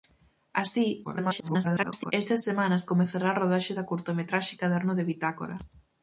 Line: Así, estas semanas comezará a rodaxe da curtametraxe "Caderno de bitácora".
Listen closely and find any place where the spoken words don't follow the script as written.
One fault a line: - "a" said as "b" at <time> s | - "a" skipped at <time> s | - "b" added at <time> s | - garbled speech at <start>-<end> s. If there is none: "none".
- garbled speech at 1.0-2.1 s